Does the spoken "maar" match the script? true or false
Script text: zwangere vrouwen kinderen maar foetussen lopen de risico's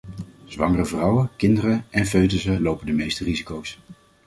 false